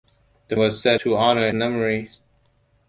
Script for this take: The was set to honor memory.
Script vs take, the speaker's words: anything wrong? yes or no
no